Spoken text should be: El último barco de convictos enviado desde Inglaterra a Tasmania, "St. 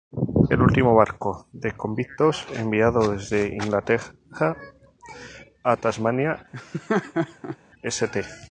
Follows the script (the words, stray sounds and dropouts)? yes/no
no